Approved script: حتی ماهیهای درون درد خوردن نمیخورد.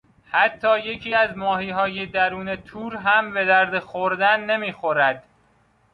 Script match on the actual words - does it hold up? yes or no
no